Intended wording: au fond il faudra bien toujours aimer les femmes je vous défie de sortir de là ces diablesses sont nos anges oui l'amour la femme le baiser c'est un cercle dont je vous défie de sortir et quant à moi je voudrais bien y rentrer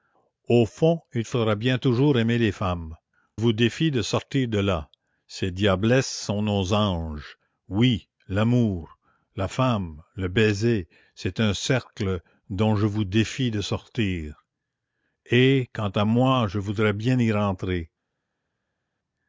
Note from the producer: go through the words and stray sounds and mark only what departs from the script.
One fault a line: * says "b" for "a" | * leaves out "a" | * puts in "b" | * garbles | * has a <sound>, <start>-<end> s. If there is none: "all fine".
* leaves out "je"